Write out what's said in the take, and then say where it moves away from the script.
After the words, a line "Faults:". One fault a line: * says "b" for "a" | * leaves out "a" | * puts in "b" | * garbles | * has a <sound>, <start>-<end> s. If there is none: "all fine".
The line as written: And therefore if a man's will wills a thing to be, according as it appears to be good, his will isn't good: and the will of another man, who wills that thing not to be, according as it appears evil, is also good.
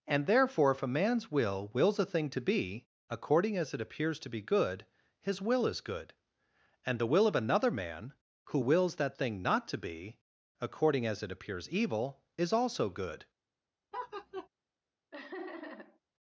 And therefore if a man's will wills a thing to be, according as it appears to be good, his will is good: and the will of another man, who wills that thing not to be, according as it appears evil, is also good.
Faults:
* says "is" for "isn't"
* has a laugh, 13.9-14.5 s
* has a laugh, 15.1-16.0 s